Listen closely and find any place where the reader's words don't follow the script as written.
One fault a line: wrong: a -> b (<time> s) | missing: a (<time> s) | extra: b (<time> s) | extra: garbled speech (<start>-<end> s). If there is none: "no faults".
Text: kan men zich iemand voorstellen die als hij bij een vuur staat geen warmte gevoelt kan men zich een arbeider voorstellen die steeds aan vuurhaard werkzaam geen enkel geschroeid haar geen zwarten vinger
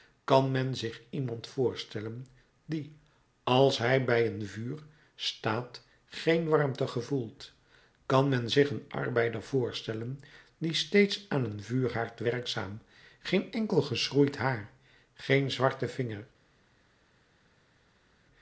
extra: een (11.4 s)